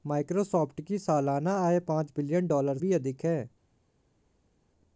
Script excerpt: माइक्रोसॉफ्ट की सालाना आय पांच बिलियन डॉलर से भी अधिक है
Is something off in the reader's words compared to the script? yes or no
yes